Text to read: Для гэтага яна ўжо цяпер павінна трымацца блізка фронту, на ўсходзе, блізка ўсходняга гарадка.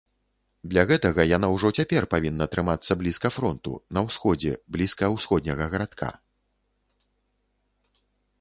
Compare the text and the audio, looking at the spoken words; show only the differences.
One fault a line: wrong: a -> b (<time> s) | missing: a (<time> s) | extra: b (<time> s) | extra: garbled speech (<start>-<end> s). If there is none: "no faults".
no faults